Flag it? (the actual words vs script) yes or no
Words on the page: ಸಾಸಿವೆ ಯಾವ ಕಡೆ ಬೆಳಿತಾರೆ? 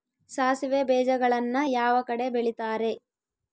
yes